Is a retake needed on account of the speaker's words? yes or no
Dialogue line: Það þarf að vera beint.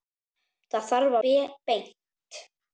yes